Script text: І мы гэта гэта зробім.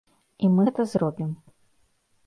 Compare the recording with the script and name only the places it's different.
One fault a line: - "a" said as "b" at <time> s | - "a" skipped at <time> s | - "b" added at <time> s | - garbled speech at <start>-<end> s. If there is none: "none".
- "гэта" skipped at 0.9 s